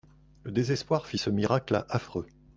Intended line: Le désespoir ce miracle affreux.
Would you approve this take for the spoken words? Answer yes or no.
no